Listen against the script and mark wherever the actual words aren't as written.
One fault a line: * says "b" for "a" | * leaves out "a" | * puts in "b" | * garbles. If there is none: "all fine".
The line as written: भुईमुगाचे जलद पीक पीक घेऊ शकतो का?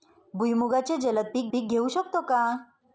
all fine